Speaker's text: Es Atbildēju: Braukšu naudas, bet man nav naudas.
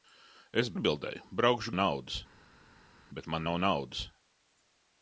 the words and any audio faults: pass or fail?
pass